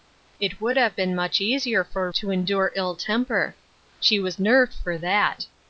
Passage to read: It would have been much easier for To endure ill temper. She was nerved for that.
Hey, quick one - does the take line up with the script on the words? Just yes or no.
yes